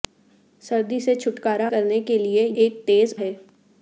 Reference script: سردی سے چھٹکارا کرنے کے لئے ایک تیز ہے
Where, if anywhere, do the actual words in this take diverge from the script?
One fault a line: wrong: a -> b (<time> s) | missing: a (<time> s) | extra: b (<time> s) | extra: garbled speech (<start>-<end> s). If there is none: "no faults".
no faults